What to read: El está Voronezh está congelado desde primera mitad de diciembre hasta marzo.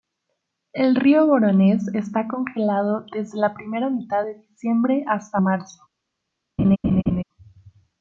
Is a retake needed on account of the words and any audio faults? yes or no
yes